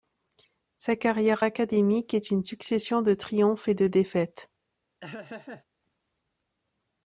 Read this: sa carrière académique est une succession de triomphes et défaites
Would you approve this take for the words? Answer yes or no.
no